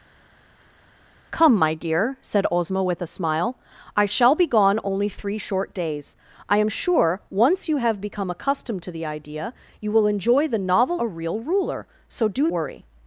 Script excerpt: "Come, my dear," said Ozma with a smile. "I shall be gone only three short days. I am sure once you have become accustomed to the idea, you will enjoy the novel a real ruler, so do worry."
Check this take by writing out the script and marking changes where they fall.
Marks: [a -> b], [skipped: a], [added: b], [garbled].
"Come, my dear," said Ozma with a smile. "I shall be gone only three short days. I am sure once you have become accustomed to the idea, you will enjoy the novel a real ruler, so do worry."